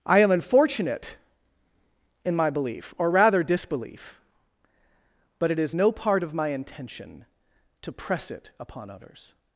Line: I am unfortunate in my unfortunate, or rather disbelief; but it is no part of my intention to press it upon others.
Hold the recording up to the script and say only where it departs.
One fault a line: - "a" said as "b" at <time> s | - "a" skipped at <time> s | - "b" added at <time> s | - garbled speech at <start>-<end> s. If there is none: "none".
- "unfortunate" said as "belief" at 2.5 s